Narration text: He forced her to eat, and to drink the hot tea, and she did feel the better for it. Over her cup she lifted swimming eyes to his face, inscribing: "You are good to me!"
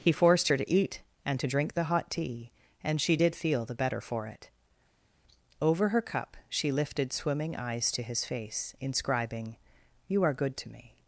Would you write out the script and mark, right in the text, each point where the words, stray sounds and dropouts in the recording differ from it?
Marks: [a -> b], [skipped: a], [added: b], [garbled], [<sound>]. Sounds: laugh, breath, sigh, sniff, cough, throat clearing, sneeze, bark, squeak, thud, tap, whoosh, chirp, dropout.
He forced her to eat, and to drink the hot tea, and she did feel the better for it. Over her cup she lifted swimming eyes to his face, inscribing: "You are good to me!"